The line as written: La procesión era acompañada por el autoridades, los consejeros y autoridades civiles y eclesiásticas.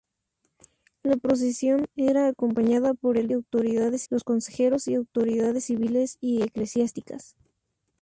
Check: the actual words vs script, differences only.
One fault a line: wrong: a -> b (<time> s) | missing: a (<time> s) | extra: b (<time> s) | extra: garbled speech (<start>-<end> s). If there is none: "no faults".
no faults